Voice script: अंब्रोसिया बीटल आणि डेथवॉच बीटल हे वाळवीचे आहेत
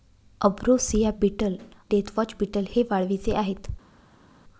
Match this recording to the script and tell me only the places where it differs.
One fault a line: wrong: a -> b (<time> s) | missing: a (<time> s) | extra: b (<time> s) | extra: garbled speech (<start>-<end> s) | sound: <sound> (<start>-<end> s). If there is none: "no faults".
missing: आणि (1.6 s)